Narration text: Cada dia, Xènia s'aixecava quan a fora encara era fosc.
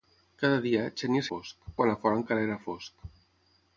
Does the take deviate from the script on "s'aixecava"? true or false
true